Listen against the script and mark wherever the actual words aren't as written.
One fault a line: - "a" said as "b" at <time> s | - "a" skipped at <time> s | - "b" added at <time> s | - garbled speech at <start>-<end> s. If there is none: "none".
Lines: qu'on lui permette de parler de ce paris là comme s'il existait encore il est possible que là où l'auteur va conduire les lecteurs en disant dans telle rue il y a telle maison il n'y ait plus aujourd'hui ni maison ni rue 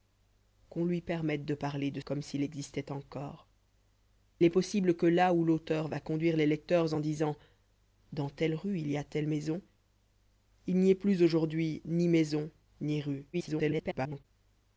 - "ce paris là" skipped at 2.0 s
- "il" skipped at 3.5 s
- garbled speech at 13.3-14.2 s